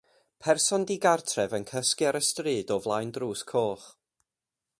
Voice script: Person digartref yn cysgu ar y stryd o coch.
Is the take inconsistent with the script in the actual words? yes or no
yes